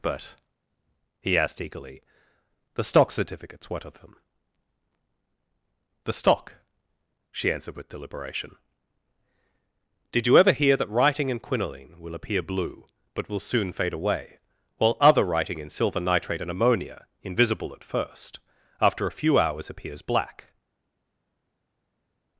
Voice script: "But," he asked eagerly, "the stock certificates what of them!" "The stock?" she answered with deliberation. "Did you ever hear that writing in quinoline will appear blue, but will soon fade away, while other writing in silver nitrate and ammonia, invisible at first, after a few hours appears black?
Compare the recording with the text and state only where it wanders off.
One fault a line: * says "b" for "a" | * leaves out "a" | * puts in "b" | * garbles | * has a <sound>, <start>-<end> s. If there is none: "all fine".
all fine